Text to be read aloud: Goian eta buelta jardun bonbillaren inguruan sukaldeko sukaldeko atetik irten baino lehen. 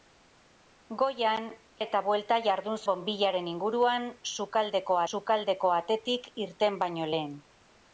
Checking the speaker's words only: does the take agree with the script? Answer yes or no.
yes